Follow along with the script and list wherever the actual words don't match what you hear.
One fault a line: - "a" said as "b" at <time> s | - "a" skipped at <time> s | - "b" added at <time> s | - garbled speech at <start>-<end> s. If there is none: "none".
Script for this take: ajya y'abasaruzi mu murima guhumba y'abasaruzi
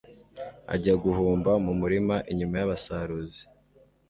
- "y'abasaruzi" said as "guhumba" at 1.0 s
- "guhumba" said as "inyuma" at 2.3 s